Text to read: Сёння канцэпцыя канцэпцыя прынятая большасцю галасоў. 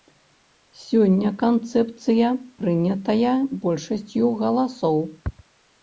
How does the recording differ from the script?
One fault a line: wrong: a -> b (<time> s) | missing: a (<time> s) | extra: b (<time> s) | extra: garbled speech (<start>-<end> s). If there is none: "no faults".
missing: канцэпцыя (2.3 s)